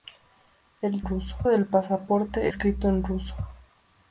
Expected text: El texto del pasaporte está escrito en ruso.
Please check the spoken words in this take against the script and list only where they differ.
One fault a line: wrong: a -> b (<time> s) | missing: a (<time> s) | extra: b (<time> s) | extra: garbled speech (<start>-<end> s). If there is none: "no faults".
wrong: texto -> ruso (1.0 s)
missing: está (2.5 s)